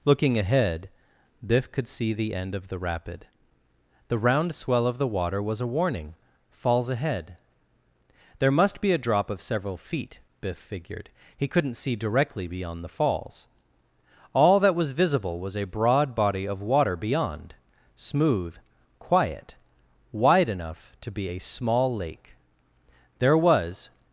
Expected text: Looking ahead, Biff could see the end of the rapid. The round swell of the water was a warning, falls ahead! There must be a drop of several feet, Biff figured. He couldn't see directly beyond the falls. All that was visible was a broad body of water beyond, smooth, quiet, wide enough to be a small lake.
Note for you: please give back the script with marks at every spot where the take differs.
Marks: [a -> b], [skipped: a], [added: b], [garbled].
Looking ahead, Biff could see the end of the rapid. The round swell of the water was a warning, falls ahead! There must be a drop of several feet, Biff figured. He couldn't see directly beyond the falls. All that was visible was a broad body of water beyond, smooth, quiet, wide enough to be a small lake. [added: There was]